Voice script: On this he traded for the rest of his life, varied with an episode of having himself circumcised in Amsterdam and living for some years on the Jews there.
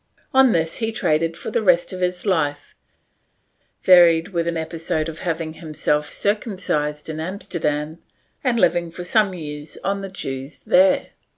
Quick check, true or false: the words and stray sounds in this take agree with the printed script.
true